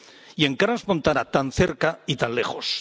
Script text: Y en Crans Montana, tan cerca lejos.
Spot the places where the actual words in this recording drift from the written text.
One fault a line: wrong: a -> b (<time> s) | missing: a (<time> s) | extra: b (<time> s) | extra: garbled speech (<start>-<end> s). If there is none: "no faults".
extra: y tan (2.0 s)